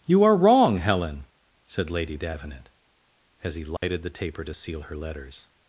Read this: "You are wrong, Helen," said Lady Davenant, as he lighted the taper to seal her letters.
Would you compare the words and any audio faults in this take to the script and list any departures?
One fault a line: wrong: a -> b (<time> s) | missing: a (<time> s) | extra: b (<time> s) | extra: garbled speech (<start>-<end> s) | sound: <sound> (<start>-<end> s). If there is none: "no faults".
sound: dropout (3.8-3.8 s)